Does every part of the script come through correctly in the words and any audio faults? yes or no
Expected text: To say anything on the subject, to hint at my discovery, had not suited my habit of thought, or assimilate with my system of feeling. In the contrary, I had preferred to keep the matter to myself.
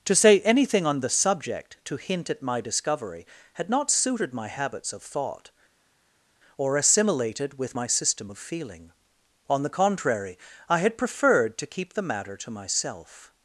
no